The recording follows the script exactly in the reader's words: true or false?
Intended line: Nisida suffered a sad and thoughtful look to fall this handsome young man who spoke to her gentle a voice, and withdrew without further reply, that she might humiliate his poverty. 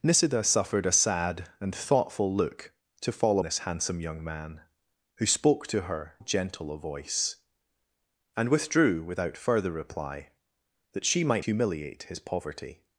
true